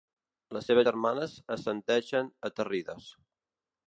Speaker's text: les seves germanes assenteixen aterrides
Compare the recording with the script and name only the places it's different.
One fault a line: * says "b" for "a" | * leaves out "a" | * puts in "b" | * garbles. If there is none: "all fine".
all fine